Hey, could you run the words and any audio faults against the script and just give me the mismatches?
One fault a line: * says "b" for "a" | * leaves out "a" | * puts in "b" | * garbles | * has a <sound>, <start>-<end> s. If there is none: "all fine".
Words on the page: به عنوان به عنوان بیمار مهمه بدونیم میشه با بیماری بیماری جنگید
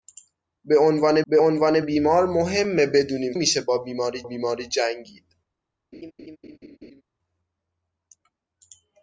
* has a laugh, 5.9-7.0 s